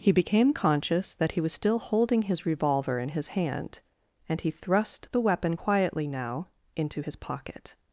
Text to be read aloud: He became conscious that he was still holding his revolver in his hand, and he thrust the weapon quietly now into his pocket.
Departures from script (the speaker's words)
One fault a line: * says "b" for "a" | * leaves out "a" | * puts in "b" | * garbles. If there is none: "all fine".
all fine